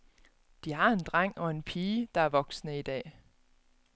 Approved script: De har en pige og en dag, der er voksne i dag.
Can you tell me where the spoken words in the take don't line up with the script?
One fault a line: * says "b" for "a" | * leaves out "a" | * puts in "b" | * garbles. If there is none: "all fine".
* says "dreng" for "pige"
* says "pige" for "dag"